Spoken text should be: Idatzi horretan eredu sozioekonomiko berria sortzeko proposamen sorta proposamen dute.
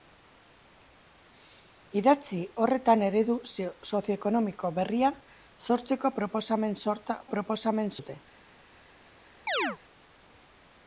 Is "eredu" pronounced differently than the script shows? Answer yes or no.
no